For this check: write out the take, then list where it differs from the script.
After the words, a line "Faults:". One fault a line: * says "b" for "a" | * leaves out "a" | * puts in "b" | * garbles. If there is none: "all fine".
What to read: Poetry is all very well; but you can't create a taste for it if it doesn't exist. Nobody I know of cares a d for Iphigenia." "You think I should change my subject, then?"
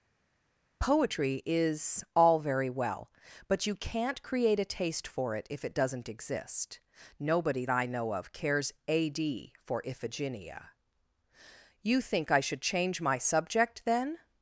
Poetry is all very well; but you can't create a taste for it if it doesn't exist. Nobody I know of cares a d for Iphigenia." "You think I should change my subject, then?"
Faults:
all fine